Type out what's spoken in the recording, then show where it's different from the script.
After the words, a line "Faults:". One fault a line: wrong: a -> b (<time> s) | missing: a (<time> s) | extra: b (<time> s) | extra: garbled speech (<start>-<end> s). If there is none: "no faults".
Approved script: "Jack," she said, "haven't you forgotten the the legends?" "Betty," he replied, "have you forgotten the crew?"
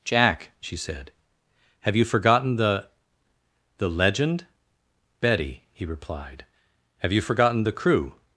"Jack," she said, "have you forgotten the the legend?" "Betty," he replied, "have you forgotten the crew?"
Faults:
wrong: haven't -> have (1.8 s)
wrong: legends -> legend (3.9 s)